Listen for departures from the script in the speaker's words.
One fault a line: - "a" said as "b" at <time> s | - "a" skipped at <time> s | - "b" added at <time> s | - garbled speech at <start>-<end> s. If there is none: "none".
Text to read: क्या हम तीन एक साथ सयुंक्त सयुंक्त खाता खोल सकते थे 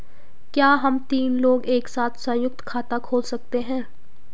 - "लोग" added at 1.4 s
- "सयुंक्त" skipped at 2.6 s
- "थे" said as "हैं" at 3.6 s